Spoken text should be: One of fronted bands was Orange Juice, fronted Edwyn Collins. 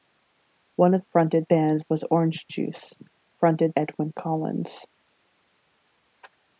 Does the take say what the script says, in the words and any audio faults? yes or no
yes